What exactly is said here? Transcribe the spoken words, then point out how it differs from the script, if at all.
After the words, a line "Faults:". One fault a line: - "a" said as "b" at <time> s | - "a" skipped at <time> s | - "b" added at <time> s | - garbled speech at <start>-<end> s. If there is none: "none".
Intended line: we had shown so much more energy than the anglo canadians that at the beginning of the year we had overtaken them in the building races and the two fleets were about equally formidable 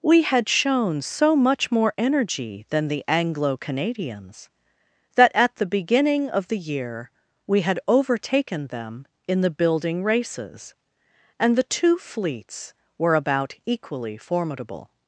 we had shown so much more energy than the anglo canadians that at the beginning of the year we had overtaken them in the building races and the two fleets were about equally formidable
Faults:
none